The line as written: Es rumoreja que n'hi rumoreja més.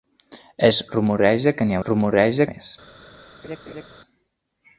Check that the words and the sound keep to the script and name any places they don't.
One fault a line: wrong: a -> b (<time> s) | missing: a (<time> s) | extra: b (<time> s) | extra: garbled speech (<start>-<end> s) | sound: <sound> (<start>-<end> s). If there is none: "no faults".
sound: laugh (3.4-3.8 s)